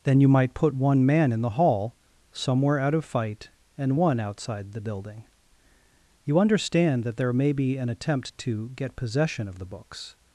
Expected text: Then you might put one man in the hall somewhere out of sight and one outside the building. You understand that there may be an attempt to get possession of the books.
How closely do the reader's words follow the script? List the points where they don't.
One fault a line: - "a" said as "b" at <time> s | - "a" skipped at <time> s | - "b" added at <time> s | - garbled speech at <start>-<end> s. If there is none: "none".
- "sight" said as "fight" at 3.0 s